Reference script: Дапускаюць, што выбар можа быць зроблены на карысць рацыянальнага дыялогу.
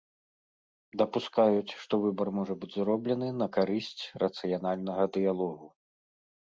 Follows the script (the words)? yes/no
yes